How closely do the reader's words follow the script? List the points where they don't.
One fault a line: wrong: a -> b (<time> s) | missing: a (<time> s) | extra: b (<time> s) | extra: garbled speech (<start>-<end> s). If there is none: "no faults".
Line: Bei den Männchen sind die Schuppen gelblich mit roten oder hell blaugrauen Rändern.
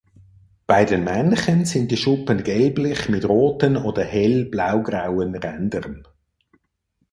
no faults